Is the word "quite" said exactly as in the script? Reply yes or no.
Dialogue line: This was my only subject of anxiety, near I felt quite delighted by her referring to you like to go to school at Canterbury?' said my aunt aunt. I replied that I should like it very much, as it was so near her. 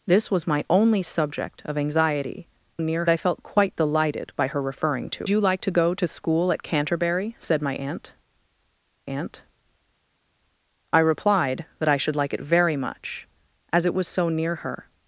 yes